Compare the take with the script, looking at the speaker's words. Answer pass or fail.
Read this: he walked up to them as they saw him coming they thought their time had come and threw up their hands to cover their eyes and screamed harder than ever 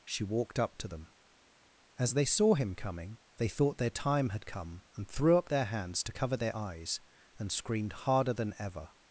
fail